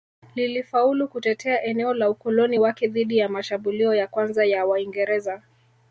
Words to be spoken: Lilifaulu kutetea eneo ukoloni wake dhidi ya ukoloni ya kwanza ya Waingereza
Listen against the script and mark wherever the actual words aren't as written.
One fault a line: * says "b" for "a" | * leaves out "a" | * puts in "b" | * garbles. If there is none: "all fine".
* puts in "la"
* says "mashambulio" for "ukoloni"